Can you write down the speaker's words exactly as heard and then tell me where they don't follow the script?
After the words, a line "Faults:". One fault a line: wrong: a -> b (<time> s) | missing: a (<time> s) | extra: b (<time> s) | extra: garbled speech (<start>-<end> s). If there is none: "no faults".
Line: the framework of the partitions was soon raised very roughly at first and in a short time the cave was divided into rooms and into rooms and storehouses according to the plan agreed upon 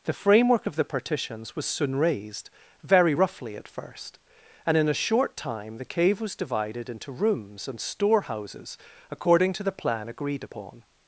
the framework of the partitions was soon raised very roughly at first and in a short time the cave was divided into rooms and storehouses according to the plan agreed upon
Faults:
missing: into rooms and (7.8 s)